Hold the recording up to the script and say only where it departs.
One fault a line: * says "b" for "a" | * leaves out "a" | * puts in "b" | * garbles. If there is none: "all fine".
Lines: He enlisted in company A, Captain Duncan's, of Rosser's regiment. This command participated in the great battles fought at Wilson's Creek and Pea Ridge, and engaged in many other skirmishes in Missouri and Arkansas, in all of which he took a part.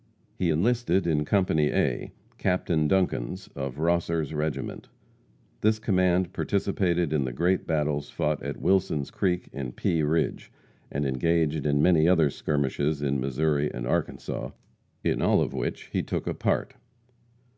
all fine